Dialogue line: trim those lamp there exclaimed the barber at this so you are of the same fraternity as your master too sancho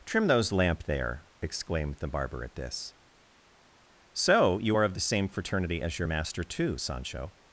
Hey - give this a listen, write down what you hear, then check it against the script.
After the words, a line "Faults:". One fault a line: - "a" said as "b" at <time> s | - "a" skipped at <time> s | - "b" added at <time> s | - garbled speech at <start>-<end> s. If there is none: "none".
trim those lamp there exclaimed the barber at this so you are of the same fraternity as your master too sancho
Faults:
none